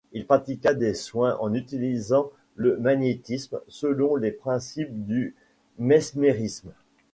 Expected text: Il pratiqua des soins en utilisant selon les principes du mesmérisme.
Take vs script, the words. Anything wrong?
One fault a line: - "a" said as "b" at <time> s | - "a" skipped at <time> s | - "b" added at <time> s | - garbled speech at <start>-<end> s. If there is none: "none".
- "le magnétisme" added at 2.5 s